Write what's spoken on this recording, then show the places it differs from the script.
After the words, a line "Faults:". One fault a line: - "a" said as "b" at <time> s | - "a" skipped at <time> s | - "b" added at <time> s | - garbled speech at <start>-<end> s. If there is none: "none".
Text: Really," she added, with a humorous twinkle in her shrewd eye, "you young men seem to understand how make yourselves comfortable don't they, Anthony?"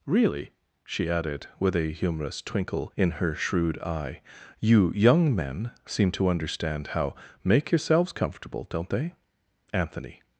Really," she added, with a humorous twinkle in her shrewd eye, "you young men seem to understand how make yourselves comfortable don't they, Anthony?"
Faults:
none